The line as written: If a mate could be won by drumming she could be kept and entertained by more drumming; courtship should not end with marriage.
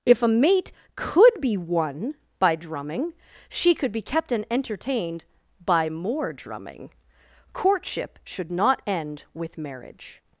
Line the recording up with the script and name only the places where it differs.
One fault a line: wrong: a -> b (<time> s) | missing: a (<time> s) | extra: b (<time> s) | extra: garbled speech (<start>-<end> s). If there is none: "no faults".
no faults